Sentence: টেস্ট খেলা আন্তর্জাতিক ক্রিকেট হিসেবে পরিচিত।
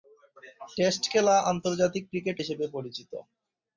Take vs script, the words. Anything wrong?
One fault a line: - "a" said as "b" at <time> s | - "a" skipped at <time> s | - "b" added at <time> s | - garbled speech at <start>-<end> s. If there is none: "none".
none